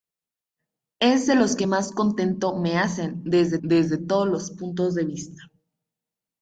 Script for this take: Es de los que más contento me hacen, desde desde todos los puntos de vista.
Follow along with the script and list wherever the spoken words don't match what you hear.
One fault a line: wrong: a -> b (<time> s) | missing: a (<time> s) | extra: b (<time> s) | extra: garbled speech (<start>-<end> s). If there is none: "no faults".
no faults